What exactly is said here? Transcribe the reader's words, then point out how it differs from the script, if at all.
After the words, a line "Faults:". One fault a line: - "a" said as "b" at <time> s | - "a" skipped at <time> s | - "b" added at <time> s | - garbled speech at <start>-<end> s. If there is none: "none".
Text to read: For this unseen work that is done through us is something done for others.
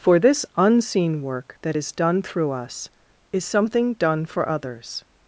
For this unseen work that is done through us is something done for others.
Faults:
none